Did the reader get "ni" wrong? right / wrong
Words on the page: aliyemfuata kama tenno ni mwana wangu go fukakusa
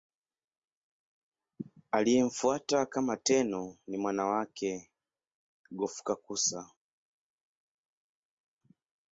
right